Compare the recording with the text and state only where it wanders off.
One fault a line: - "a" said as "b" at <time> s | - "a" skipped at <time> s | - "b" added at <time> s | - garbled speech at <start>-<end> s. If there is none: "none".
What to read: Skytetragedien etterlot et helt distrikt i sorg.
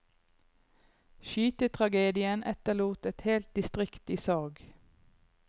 none